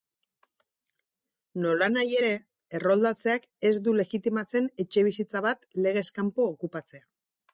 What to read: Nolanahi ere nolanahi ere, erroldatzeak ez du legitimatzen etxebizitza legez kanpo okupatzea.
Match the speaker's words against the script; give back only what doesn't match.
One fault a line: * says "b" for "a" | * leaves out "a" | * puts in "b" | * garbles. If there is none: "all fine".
* leaves out "nolanahi ere"
* puts in "bat"